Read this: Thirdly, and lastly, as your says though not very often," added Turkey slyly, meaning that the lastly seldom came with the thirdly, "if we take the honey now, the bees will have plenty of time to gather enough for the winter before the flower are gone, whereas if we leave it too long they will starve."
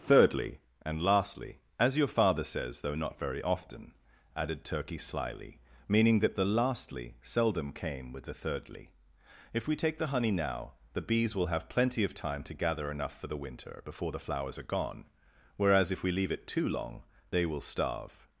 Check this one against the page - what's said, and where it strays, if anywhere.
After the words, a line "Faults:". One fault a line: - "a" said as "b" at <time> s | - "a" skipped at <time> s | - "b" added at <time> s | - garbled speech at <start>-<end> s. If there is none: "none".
Thirdly, and lastly, as your father says though not very often," added Turkey slyly, meaning that the lastly seldom came with the thirdly, "if we take the honey now, the bees will have plenty of time to gather enough for the winter before the flowers are gone, whereas if we leave it too long they will starve."
Faults:
- "father" added at 2.1 s
- "flower" said as "flowers" at 14.2 s